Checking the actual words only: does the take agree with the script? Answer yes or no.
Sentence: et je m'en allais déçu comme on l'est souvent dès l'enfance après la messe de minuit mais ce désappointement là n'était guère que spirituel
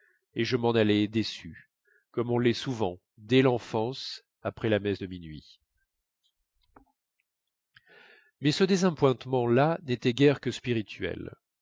yes